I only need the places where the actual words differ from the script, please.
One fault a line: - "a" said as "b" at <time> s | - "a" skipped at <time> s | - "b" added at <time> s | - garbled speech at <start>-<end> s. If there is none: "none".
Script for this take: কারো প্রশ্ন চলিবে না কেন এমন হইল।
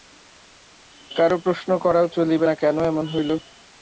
- "করাও" added at 1.8 s